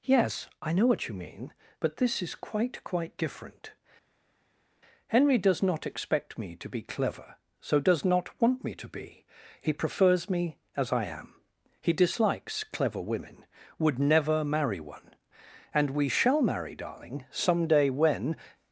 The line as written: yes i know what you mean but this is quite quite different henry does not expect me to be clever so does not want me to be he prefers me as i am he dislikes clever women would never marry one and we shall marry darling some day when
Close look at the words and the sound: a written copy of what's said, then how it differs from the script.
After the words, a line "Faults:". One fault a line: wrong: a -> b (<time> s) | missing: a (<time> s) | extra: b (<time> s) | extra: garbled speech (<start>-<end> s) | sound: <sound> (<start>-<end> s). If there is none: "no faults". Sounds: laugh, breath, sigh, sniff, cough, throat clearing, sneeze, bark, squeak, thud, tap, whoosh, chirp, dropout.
yes i know what you mean but this is quite quite different henry does not expect me to be clever so does not want me to be he prefers me as i am he dislikes clever women would never marry one and we shall marry darling some day when
Faults:
no faults